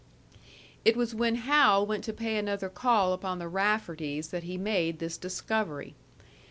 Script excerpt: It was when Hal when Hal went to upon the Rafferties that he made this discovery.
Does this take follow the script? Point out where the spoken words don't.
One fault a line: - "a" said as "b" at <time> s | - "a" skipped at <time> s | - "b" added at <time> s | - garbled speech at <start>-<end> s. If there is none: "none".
- "when Hal went to" said as "went to pay another call" at 1.9 s